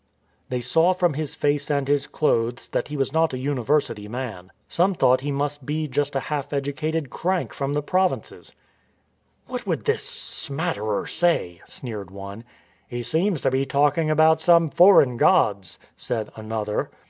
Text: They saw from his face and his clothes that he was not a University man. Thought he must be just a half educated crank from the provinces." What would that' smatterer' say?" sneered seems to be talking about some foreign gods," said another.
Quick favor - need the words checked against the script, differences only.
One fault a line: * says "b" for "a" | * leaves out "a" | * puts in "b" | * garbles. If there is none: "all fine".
* puts in "Some"
* says "this" for "that"
* puts in "one He"